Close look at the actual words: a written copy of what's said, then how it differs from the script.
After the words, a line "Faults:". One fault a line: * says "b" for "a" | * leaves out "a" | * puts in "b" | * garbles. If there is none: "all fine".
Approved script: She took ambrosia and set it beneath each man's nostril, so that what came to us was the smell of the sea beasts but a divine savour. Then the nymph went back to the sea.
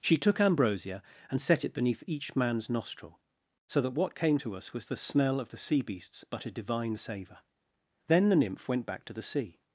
She took ambrosia and set it beneath each man's nostril, so that what came to us was the smell of the sea beasts but a divine savour. Then the nymph went back to the sea.
Faults:
all fine